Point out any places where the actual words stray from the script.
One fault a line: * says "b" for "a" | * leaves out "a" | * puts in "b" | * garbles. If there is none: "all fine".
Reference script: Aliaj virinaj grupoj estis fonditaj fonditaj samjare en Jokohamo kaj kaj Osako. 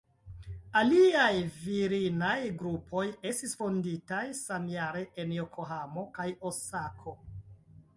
* leaves out "fonditaj"
* leaves out "kaj"